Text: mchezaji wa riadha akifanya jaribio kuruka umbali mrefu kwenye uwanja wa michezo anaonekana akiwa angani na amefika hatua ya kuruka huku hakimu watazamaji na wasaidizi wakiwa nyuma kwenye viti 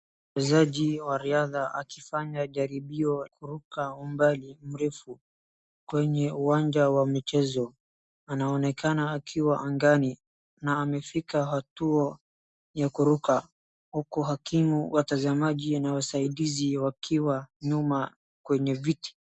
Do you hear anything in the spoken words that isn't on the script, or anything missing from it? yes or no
no